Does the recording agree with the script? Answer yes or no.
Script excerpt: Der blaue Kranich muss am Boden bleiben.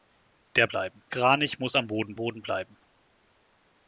no